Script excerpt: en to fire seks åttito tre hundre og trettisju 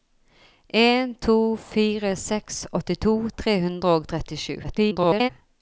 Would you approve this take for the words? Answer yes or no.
no